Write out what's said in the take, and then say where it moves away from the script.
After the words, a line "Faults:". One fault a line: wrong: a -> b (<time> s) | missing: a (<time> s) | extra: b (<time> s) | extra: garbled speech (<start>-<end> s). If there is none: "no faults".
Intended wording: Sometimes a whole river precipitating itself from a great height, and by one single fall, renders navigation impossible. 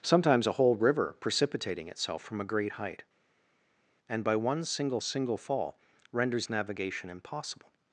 Sometimes a whole river precipitating itself from a great height, and by one single single fall, renders navigation impossible.
Faults:
extra: single (5.0 s)